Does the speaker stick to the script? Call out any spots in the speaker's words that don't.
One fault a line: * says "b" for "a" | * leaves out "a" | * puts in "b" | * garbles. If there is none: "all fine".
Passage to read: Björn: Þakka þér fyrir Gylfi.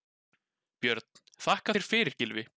all fine